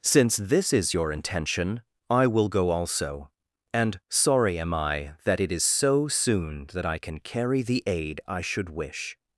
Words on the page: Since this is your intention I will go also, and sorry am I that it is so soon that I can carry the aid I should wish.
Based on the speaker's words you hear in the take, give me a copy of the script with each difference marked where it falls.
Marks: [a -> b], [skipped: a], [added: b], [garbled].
Since this is your intention I will go also, and sorry am I that it is so soon that I can carry the aid I should wish.